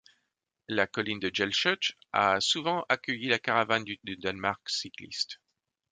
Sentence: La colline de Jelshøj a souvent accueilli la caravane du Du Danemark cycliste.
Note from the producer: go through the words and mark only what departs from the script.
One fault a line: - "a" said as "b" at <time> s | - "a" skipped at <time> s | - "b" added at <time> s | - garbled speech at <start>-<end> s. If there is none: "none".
none